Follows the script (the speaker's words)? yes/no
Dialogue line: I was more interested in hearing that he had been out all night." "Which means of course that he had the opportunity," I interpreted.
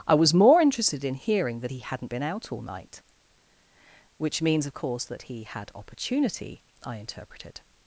no